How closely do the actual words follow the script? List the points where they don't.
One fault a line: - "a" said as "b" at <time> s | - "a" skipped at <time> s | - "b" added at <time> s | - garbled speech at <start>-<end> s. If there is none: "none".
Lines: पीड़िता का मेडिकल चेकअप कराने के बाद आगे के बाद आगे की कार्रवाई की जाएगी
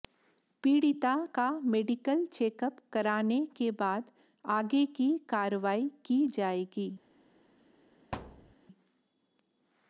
- "के बाद आगे" skipped at 4.8 s